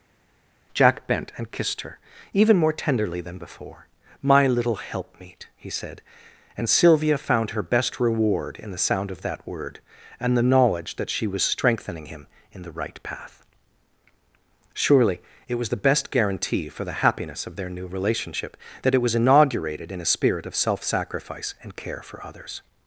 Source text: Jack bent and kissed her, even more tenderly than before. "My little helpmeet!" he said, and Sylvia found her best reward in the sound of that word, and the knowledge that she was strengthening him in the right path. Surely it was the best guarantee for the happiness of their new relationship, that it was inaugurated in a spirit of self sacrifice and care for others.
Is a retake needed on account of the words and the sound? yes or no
no